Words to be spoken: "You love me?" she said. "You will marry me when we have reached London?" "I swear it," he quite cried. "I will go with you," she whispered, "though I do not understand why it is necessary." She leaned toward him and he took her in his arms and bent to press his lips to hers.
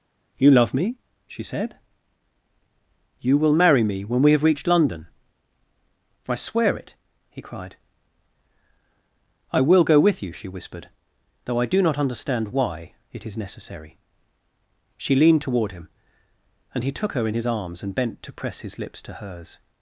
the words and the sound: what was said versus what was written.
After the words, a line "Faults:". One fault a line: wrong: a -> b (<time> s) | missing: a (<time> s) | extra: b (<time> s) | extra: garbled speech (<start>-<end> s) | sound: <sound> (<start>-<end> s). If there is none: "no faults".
"You love me?" she said. "You will marry me when we have reached London?" "I swear it," he cried. "I will go with you," she whispered, "though I do not understand why it is necessary." She leaned toward him and he took her in his arms and bent to press his lips to hers.
Faults:
missing: quite (7.4 s)